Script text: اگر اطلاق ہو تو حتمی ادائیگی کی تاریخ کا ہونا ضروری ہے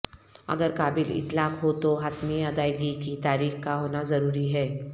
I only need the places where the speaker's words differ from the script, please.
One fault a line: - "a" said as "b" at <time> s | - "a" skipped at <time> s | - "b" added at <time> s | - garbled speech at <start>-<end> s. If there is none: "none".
- "قابل" added at 0.7 s